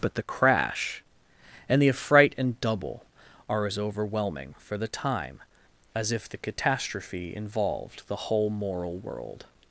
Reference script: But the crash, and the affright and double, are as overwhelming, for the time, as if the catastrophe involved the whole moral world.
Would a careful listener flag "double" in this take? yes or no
no